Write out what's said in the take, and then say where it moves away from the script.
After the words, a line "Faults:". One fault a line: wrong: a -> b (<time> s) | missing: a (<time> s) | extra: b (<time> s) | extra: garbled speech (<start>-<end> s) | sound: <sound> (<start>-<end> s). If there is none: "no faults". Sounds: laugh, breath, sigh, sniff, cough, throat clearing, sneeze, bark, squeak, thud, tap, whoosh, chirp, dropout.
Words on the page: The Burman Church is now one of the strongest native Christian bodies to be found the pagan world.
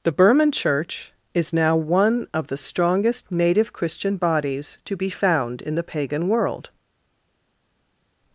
The Burman Church is now one of the strongest native Christian bodies to be found in the pagan world.
Faults:
extra: in (5.6 s)